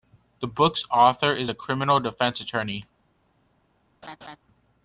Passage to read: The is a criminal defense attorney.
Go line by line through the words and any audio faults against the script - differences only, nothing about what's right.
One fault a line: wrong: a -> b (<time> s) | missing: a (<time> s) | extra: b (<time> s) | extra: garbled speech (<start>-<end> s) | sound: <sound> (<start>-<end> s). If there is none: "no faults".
extra: book's author (0.5 s)
sound: laugh (4.0-4.4 s)